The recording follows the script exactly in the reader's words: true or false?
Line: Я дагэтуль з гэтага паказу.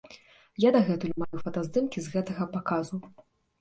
false